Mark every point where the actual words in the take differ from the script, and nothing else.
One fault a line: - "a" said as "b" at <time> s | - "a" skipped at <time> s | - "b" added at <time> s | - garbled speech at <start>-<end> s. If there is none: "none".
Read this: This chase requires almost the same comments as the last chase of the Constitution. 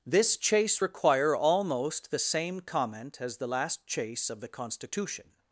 - "requires" said as "require" at 0.8 s
- "comments" said as "comment" at 2.6 s